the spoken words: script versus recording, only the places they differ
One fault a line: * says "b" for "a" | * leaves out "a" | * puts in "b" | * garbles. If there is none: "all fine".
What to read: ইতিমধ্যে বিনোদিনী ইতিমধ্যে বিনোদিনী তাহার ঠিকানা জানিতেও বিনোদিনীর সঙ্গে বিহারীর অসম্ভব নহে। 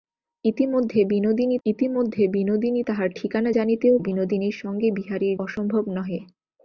all fine